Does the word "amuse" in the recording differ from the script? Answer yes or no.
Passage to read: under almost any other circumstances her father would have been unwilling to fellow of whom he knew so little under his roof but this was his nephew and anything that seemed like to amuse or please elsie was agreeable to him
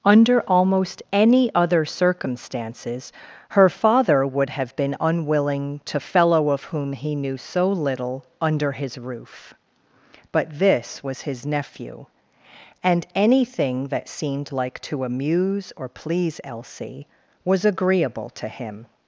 no